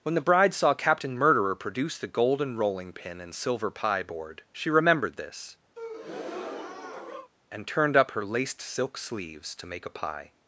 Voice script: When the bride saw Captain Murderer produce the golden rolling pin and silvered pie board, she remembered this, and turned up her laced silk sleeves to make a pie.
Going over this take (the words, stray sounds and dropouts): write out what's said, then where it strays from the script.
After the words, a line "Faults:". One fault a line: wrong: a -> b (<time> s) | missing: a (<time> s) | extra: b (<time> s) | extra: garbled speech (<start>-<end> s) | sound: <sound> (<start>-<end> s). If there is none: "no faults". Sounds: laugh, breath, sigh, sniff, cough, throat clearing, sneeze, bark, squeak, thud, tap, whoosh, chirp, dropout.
When the bride saw Captain Murderer produce the golden rolling pin and silver pie board, she remembered this, and turned up her laced silk sleeves to make a pie.
Faults:
wrong: silvered -> silver (3.4 s)
sound: breath (5.8-7.3 s)